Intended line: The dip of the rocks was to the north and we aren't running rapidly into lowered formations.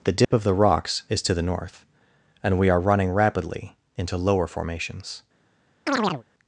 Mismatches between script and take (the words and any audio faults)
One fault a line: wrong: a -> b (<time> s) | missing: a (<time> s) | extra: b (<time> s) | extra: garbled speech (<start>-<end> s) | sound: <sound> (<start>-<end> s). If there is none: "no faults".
sound: dropout (0.2-0.3 s)
wrong: was -> is (1.1 s)
wrong: aren't -> are (2.7 s)
wrong: lowered -> lower (4.1 s)
sound: chirp (5.9-6.2 s)